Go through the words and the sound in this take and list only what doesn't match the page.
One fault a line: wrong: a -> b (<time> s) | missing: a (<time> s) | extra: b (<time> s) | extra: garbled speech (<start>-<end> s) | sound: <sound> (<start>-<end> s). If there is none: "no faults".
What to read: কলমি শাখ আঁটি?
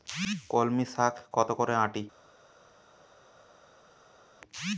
extra: কত করে (1.3 s)